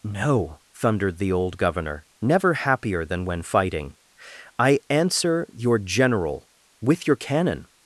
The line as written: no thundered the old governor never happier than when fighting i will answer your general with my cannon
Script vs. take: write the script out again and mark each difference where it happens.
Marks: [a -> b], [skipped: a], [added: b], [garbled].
no thundered the old governor never happier than when fighting i [skipped: will] answer your general with [my -> your] cannon